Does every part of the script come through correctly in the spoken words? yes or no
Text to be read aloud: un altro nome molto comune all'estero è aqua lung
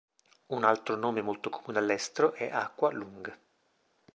yes